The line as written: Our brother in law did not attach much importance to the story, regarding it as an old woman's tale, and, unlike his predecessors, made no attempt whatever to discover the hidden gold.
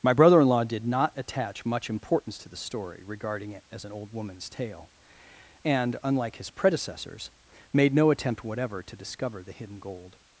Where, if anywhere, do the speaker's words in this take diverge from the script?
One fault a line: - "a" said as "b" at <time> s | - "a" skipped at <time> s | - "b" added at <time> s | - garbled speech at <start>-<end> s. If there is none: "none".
- "Our" said as "My" at 0.0 s